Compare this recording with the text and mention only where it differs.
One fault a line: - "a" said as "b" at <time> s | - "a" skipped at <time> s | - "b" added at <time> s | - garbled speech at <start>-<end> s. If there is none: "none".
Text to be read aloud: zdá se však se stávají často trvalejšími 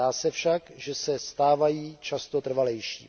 - "že" added at 0.8 s